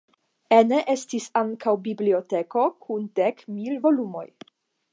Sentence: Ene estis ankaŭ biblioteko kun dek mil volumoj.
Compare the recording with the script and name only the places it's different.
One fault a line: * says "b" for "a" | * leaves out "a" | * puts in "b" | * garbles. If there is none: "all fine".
all fine